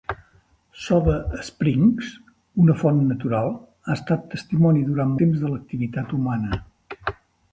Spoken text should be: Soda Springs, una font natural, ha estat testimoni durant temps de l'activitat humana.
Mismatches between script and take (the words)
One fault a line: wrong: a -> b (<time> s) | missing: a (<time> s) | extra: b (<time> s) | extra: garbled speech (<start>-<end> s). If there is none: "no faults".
no faults